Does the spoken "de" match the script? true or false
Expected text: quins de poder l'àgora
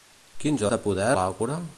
true